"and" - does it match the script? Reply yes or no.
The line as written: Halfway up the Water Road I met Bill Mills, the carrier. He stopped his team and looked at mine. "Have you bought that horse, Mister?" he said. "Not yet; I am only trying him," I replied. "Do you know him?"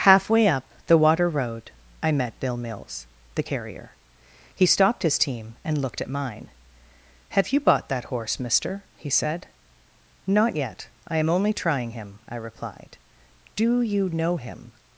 yes